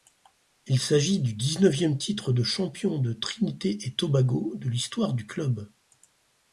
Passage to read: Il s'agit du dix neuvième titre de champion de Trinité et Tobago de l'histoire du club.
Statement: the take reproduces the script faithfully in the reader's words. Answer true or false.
true